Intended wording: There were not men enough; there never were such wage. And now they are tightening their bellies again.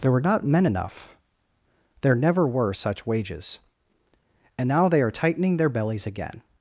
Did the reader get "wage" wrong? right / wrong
wrong